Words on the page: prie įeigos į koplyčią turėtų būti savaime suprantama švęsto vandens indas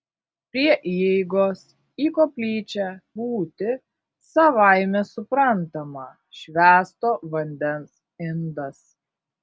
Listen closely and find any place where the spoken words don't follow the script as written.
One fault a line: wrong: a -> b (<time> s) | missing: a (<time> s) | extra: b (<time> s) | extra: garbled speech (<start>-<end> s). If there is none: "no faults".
missing: turėtų (2.9 s)